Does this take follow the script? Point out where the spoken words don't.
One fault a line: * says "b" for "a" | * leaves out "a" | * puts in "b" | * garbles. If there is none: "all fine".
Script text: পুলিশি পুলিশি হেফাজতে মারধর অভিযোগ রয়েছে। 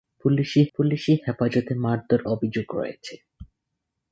all fine